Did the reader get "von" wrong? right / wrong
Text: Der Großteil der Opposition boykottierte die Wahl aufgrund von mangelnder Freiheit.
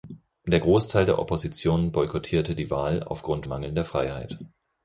wrong